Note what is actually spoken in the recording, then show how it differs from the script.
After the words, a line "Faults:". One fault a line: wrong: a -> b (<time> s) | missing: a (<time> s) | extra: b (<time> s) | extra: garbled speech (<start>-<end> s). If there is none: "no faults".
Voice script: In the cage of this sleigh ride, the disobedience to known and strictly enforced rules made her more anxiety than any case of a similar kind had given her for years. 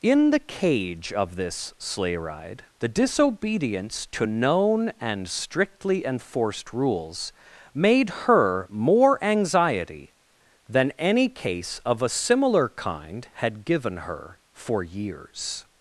In the cage of this sleigh ride, the disobedience to known and strictly enforced rules made her more anxiety than any case of a similar kind had given her for years.
Faults:
no faults